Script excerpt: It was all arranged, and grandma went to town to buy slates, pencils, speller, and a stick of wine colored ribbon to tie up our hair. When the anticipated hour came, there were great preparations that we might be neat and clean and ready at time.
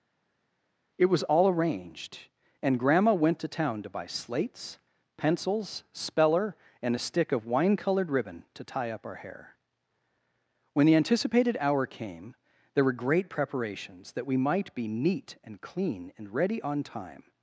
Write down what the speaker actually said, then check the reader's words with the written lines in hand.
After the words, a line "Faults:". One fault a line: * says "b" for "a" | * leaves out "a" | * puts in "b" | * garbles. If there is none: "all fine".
It was all arranged, and grandma went to town to buy slates, pencils, speller, and a stick of wine colored ribbon to tie up our hair. When the anticipated hour came, there were great preparations that we might be neat and clean and ready on time.
Faults:
* says "on" for "at"